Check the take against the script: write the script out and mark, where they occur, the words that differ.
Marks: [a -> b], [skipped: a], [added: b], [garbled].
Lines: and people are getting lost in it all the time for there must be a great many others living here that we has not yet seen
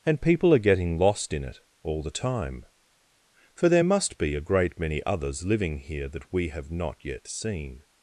and people are getting lost in it all the time for there must be a great many others living here that we [has -> have] not yet seen